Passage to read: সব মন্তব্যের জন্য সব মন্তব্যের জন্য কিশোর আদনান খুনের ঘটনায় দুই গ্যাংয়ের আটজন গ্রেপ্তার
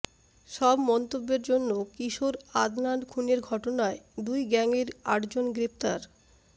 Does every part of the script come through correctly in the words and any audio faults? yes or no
no